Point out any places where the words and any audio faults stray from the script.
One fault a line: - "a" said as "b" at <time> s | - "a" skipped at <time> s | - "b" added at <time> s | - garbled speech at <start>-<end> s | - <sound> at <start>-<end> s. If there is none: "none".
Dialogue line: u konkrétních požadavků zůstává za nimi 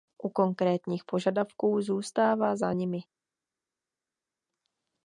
none